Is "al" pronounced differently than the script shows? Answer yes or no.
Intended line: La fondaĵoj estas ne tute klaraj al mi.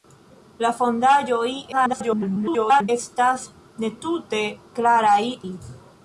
yes